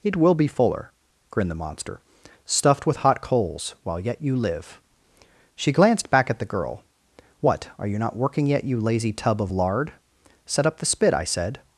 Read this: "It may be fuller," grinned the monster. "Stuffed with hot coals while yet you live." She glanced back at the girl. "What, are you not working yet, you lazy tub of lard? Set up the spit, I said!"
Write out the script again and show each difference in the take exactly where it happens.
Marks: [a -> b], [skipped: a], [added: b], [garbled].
"It [may -> will] be fuller," grinned the monster. "Stuffed with hot coals while yet you live." She glanced back at the girl. "What, are you not working yet, you lazy tub of lard? Set up the spit, I said!"